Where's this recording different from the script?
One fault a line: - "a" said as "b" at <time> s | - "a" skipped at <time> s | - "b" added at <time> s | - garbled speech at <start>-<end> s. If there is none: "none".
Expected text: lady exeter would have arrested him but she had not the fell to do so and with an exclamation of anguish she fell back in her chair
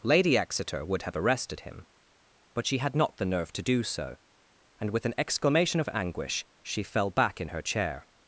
- "fell" said as "nerve" at 3.2 s